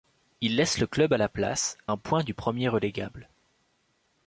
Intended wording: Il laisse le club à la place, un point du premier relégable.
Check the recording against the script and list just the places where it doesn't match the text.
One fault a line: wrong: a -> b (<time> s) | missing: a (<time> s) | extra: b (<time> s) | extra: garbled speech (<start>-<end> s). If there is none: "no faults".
no faults